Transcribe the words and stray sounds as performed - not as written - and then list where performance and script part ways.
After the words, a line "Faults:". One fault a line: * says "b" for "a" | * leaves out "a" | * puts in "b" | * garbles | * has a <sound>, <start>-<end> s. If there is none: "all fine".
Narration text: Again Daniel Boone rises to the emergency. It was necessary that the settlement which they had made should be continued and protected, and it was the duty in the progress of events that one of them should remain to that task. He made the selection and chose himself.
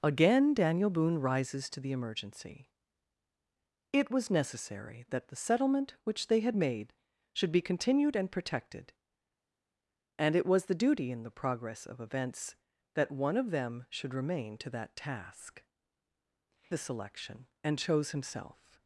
Again Daniel Boone rises to the emergency. It was necessary that the settlement which they had made should be continued and protected, and it was the duty in the progress of events that one of them should remain to that task. The selection and chose himself.
Faults:
* leaves out "He made"